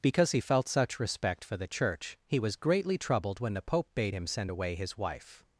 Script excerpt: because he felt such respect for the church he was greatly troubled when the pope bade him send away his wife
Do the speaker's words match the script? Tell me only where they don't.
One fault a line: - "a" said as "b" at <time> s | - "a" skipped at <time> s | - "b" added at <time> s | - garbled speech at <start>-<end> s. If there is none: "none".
none